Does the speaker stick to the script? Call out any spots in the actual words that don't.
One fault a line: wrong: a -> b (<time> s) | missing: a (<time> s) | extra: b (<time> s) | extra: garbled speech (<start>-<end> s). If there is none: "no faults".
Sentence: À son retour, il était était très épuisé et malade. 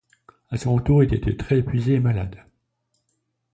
no faults